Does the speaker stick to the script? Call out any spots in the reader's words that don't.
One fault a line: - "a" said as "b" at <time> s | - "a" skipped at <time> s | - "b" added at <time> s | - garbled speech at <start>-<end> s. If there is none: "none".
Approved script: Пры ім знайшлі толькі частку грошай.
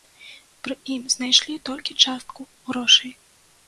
none